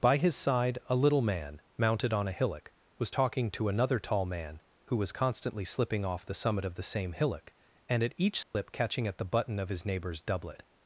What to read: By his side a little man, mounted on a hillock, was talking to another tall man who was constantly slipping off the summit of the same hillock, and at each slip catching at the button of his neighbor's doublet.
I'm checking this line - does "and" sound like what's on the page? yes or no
yes